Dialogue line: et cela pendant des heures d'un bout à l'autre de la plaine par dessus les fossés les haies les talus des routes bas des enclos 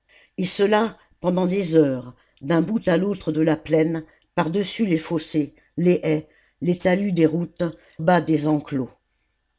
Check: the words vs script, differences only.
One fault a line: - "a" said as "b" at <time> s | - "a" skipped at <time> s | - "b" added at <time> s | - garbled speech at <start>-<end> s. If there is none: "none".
none